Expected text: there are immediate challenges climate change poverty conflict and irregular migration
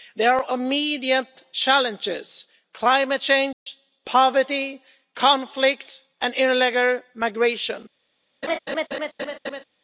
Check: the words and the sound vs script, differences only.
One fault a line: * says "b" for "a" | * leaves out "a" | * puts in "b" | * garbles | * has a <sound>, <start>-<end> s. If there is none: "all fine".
* has a dropout, 3.5-3.7 s
* has a laugh, 8.4-9.6 s